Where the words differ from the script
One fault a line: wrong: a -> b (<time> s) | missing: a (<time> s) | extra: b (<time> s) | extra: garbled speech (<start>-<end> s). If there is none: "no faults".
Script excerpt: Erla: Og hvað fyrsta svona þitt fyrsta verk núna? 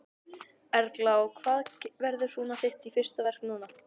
wrong: fyrsta -> verður (2.0 s)